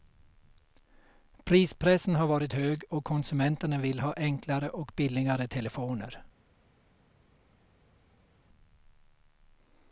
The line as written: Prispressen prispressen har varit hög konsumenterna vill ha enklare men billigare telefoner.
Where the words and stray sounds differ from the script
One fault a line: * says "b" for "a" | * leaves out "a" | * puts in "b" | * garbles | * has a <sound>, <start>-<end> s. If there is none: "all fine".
* leaves out "prispressen"
* puts in "och"
* says "och" for "men"